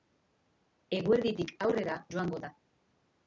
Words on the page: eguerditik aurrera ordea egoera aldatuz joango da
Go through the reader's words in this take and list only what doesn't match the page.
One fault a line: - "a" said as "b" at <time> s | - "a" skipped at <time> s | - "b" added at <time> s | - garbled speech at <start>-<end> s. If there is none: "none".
- "ordea egoera aldatuz" skipped at 2.0 s